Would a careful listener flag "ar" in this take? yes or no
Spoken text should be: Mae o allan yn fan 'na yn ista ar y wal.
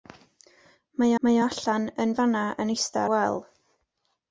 yes